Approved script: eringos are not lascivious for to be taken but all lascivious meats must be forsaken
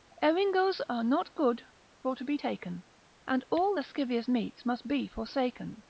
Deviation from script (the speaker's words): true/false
true